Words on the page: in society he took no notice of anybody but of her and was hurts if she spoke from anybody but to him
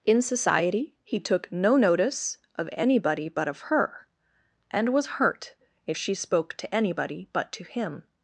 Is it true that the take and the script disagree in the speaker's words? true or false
true